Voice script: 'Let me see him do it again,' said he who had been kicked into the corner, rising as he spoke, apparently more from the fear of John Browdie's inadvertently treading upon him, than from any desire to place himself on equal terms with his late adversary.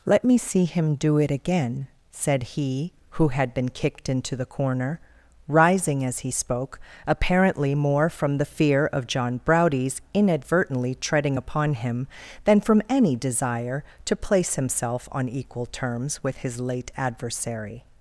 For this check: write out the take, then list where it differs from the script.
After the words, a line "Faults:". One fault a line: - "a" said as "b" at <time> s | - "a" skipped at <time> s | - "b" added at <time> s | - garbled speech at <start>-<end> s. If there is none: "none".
'Let me see him do it again,' said he who had been kicked into the corner, rising as he spoke, apparently more from the fear of John Browdie's inadvertently treading upon him, than from any desire to place himself on equal terms with his late adversary.
Faults:
none